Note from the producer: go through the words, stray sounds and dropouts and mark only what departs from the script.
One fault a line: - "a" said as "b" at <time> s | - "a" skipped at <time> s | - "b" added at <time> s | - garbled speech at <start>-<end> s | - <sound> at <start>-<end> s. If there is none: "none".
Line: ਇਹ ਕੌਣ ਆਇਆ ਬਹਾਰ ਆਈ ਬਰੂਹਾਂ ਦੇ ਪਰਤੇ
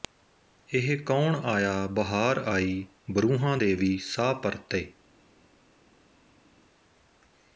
- "ਵੀ ਸਾਹ" added at 3.7 s